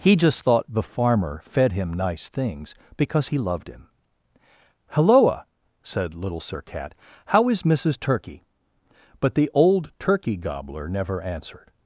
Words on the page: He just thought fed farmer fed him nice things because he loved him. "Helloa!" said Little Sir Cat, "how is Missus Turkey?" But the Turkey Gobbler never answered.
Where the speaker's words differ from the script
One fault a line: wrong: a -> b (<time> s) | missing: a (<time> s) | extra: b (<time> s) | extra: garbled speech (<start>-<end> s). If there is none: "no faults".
wrong: fed -> the (0.7 s)
extra: old (9.5 s)